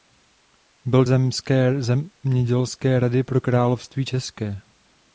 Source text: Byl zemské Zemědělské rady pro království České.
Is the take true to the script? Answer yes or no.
yes